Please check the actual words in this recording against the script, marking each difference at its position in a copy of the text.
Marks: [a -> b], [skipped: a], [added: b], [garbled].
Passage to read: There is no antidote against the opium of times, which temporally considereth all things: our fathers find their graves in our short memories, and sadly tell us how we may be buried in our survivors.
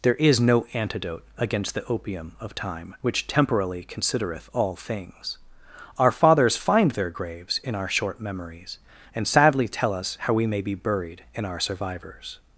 There is no antidote against the opium of [times, -> time] which temporally considereth all things: our fathers find their graves in our short memories, and sadly tell us how we may be buried in our survivors.